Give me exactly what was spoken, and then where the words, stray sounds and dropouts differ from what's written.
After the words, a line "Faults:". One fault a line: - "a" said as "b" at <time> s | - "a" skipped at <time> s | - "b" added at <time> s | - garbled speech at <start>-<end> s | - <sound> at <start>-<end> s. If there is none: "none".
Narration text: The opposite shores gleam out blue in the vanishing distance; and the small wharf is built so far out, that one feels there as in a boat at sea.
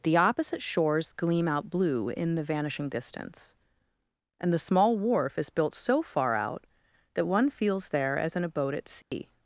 The opposite shores gleam out blue in the vanishing distance; and the small wharf is built so far out, that one feels there as in a boat at sea.
Faults:
- dropout at 9.0-9.1 s